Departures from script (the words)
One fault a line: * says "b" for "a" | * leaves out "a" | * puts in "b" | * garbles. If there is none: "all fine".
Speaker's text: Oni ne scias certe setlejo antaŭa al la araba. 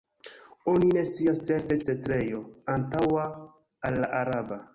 all fine